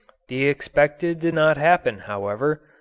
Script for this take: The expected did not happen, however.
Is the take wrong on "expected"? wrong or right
right